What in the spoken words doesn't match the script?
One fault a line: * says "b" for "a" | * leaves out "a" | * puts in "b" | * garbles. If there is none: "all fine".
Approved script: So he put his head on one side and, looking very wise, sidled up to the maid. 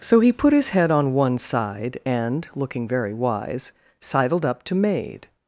* leaves out "the"